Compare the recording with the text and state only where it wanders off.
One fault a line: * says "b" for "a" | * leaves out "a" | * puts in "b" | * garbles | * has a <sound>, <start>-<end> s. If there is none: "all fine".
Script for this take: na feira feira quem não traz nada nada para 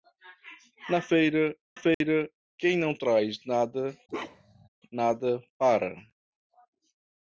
* has a dropout, 1.9-2.0 s
* has a bark, 4.1-4.7 s